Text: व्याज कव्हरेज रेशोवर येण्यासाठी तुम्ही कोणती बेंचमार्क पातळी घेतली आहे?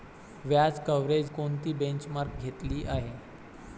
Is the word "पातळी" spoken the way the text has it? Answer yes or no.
no